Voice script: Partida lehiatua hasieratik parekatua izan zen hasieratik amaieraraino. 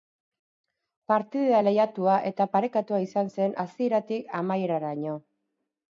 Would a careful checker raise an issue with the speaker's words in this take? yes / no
yes